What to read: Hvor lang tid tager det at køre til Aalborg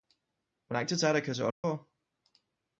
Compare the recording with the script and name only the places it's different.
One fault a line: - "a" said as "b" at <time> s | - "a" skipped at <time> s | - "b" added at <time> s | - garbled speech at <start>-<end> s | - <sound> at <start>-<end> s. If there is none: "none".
- dropout at 1.5-1.6 s